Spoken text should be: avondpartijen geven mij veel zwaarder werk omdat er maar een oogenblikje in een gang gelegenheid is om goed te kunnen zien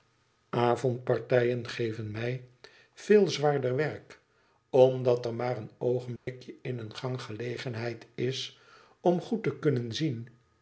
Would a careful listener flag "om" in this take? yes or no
no